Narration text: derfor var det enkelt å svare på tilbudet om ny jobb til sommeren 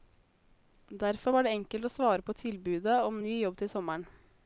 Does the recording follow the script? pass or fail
pass